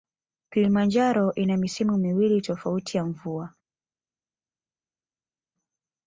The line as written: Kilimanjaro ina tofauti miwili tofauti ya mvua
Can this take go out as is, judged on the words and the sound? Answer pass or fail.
fail